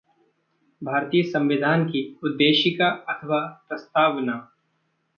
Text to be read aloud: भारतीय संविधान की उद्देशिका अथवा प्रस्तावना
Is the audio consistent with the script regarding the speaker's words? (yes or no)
yes